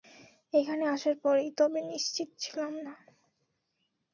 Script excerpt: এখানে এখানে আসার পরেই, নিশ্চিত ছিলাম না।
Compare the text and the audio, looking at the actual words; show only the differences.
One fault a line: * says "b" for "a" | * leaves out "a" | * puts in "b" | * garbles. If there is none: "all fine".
* leaves out "এখানে"
* puts in "তবে"